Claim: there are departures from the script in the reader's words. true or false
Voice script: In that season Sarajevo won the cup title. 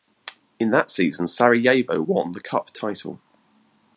false